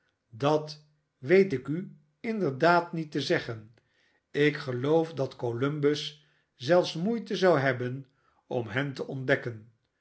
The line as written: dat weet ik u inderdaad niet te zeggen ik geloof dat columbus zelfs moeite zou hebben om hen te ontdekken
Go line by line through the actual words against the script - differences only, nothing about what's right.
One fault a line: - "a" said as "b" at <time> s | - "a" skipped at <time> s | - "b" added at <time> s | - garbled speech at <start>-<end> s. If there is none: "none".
none